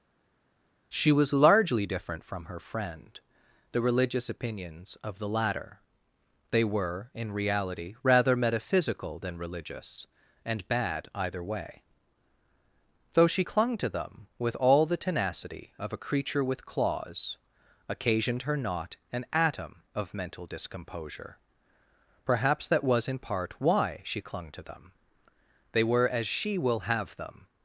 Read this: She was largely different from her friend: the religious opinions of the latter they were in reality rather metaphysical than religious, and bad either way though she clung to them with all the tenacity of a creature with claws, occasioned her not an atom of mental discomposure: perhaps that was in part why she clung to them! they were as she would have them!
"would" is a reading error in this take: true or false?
true